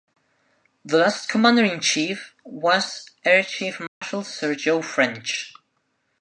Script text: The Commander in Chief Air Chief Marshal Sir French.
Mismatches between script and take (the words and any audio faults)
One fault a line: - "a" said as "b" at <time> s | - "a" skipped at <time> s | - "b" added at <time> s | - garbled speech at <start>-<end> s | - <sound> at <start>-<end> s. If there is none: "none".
- "last" added at 1.0 s
- "was" added at 2.4 s
- dropout at 3.9-4.0 s
- "Joe" added at 4.5 s